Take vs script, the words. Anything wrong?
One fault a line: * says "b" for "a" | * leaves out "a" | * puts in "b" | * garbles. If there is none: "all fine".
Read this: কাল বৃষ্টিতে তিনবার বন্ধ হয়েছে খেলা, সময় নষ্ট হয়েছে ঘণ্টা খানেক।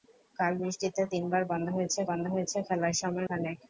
* puts in "বন্ধ হয়েছে"
* leaves out "নষ্ট হয়েছে ঘণ্টা"